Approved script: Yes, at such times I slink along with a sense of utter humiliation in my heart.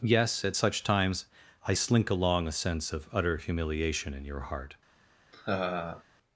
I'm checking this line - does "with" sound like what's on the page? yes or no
no